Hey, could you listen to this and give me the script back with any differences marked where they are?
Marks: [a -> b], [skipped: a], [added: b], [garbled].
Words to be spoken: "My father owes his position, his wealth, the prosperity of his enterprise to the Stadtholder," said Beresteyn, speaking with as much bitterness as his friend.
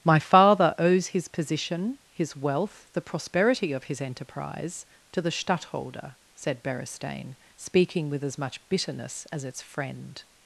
"My father owes his position, his wealth, the prosperity of his enterprise to the Stadtholder," said Beresteyn, speaking with as much bitterness as [his -> its] friend.